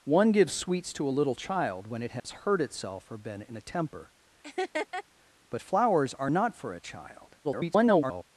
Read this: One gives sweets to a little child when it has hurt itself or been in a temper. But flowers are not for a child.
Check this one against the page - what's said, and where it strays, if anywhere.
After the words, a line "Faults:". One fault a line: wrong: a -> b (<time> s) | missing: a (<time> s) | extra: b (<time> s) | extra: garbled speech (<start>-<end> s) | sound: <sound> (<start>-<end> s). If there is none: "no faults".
One gives sweets to a little child when it has hurt itself or been in a temper. But flowers are not for a child. [garbled]
Faults:
sound: dropout (2.2-2.2 s)
sound: laugh (4.4-5.0 s)
extra: garbled speech (7.4-8.2 s)